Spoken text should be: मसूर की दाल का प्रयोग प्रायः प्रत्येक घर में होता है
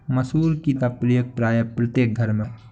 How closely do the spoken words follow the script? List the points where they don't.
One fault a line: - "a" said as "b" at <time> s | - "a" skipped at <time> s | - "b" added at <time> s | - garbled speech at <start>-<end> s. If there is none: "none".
- "दाल" skipped at 0.7 s
- "होता" skipped at 2.4 s